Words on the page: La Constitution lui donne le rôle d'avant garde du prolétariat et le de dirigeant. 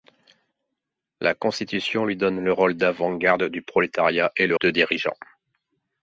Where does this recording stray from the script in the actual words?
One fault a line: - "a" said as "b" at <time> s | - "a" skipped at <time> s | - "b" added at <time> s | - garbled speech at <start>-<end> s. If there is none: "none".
none